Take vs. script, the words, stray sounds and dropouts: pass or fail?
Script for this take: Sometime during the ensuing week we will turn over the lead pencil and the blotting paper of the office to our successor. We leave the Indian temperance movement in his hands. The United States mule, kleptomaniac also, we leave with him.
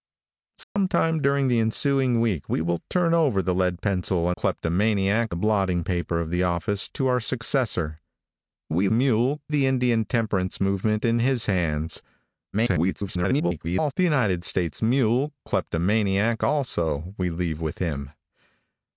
fail